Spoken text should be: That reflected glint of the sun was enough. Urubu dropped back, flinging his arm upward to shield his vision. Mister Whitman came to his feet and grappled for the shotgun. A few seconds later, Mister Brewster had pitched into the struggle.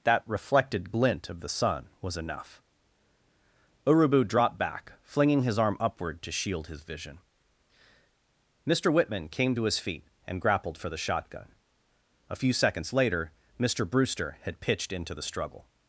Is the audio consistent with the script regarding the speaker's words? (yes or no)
yes